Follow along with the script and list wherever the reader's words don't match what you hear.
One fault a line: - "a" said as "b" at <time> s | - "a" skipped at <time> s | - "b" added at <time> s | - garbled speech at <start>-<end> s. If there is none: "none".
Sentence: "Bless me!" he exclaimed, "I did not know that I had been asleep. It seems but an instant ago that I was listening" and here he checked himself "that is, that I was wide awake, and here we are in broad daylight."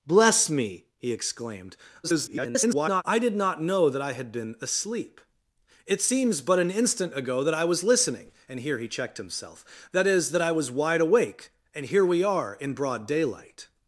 - garbled speech at 2.0-3.0 s